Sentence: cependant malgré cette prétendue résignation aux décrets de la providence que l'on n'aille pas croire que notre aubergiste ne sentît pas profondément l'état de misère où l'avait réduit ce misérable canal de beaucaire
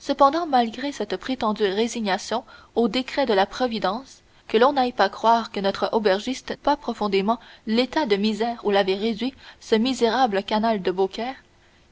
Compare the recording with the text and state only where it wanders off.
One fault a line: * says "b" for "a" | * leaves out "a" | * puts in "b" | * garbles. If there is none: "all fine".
* leaves out "ne sentît"